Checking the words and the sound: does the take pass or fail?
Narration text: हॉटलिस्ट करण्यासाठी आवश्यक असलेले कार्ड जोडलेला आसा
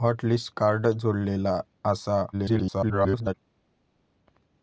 fail